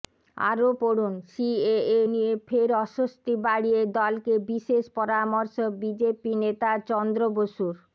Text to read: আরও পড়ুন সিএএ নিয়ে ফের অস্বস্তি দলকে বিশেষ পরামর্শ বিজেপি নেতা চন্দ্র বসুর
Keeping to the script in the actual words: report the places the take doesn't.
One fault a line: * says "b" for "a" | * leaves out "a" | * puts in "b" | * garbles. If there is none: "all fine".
* puts in "বাড়িয়ে"